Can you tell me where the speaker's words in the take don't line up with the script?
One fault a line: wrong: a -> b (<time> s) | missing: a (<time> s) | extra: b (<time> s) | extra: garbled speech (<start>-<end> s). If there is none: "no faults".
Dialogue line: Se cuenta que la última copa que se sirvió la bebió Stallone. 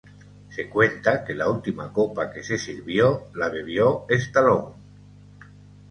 no faults